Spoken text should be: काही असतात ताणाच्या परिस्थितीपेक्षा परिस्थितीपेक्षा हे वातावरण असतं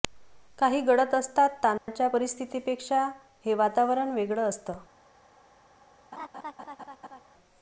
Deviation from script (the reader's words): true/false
true